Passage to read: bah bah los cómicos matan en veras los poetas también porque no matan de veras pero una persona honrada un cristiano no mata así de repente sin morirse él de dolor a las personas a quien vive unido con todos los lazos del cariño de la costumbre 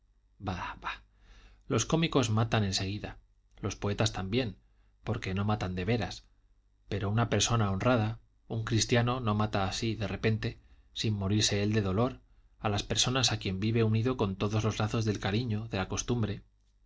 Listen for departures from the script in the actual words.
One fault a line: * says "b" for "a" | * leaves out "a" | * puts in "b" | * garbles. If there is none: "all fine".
* says "seguida" for "veras"